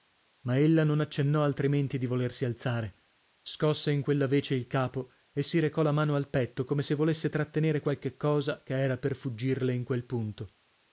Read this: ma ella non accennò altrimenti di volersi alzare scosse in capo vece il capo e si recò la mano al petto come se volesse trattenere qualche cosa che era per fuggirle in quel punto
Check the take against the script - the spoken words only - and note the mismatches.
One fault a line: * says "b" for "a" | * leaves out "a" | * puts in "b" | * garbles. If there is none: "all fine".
* says "quella" for "capo"